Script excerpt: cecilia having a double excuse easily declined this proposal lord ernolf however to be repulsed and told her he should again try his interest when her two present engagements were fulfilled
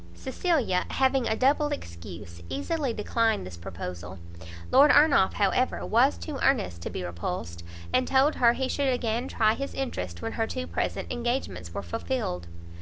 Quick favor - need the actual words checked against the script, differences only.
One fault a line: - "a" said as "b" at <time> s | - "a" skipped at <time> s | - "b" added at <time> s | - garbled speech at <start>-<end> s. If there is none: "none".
- "was too earnest" added at 5.8 s